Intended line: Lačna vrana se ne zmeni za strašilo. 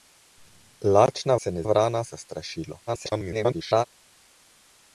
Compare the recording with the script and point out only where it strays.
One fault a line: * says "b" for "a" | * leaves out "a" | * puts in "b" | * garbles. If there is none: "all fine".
* leaves out "vrana"
* says "vrana" for "zmeni"
* garbles